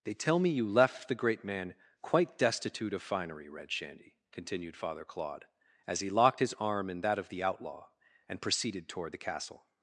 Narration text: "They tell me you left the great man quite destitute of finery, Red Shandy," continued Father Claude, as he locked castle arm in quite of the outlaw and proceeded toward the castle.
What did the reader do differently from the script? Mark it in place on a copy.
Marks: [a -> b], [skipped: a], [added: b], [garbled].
"They tell me you left the great man quite destitute of finery, Red Shandy," continued Father Claude, as he locked [castle -> his] arm in [quite -> that] of the outlaw and proceeded toward the castle.